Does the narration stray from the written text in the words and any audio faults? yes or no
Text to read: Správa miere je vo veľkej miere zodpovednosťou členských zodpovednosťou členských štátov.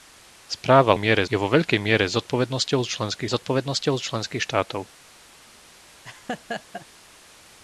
yes